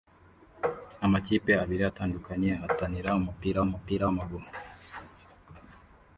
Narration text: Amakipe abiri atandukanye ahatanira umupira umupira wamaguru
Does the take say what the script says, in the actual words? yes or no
yes